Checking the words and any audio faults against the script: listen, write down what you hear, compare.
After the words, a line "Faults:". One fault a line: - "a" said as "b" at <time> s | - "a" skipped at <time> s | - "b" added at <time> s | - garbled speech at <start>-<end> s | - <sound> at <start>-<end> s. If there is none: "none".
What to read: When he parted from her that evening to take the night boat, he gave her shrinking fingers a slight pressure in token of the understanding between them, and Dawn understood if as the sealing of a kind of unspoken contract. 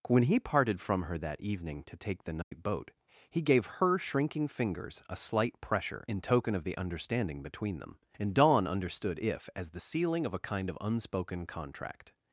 When he parted from her that evening to take the night boat, he gave her shrinking fingers a slight pressure in token of the understanding between them, and Dawn understood if as the sealing of a kind of unspoken contract.
Faults:
- dropout at 2.4-2.5 s